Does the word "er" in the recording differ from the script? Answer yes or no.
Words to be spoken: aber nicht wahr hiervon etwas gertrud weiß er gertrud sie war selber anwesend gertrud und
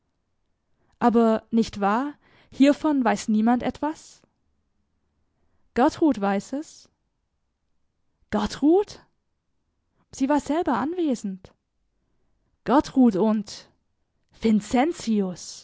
yes